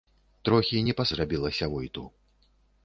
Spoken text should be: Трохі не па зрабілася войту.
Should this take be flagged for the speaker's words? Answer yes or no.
no